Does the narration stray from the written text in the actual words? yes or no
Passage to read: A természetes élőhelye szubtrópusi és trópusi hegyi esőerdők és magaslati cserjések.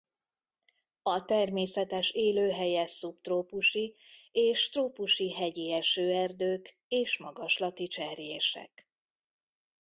no